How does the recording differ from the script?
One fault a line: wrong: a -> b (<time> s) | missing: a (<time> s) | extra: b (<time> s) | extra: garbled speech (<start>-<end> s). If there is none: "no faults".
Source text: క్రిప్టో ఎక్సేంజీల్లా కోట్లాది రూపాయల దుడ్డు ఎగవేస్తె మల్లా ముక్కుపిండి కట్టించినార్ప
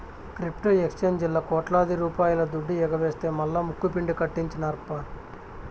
no faults